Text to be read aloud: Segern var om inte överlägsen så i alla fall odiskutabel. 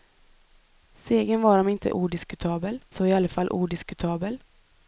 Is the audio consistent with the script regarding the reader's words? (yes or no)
no